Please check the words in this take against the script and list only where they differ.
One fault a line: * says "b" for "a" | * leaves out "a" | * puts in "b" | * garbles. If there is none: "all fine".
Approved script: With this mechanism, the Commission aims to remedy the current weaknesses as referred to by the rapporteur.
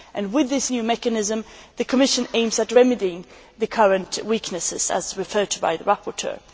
* puts in "new"